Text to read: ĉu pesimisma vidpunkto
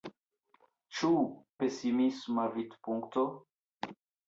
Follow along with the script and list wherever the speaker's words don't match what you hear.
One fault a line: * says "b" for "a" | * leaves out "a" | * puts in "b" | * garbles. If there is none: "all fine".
all fine